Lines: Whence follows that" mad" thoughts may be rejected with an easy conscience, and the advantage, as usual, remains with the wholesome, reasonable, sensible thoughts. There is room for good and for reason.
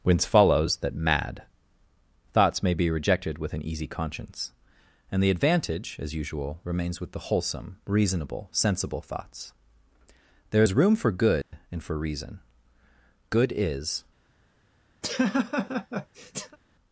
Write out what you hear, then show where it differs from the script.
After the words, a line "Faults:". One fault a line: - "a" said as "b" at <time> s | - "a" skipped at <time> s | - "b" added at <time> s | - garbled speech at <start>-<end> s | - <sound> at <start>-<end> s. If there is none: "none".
Whence follows that" mad" thoughts may be rejected with an easy conscience, and the advantage, as usual, remains with the wholesome, reasonable, sensible thoughts. There is room for good and for reason. Good is
Faults:
- dropout at 11.4-11.5 s
- "Good is" added at 13.3 s
- laugh at 15.0-16.6 s